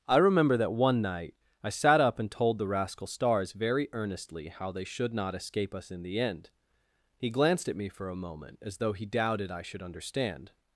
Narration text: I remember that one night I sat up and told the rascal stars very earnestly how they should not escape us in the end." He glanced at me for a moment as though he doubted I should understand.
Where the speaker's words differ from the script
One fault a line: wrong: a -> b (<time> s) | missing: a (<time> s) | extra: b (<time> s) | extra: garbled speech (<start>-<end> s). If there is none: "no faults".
no faults